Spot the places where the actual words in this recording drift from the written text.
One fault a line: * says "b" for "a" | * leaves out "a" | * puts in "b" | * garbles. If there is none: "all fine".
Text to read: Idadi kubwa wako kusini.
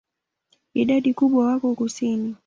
all fine